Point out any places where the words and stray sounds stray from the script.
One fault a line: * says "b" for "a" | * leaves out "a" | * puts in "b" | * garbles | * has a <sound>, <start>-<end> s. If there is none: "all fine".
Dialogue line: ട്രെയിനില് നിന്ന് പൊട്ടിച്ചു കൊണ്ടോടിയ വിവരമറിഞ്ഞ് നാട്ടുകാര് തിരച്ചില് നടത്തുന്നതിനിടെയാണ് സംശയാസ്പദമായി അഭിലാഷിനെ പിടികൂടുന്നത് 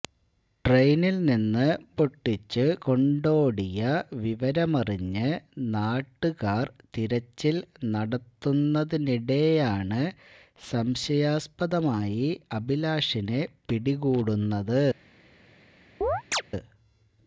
* has a chirp, 16.0-16.4 s